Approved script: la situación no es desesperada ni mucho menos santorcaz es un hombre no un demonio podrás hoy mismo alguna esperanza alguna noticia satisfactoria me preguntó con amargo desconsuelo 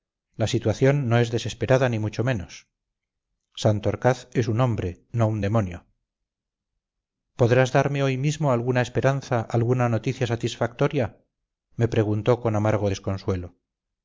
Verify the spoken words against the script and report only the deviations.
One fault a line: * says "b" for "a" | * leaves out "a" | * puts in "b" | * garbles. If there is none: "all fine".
* puts in "darme"